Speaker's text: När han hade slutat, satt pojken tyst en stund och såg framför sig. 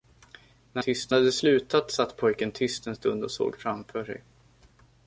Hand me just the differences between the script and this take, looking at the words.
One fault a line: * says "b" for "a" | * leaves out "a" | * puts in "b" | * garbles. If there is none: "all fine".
* says "tyst" for "han"